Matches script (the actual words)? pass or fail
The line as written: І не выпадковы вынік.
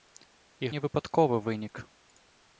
pass